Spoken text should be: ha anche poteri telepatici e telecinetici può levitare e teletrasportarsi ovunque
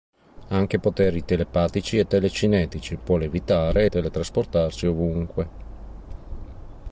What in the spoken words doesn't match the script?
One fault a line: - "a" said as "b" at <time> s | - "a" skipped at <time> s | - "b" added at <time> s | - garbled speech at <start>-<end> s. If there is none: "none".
none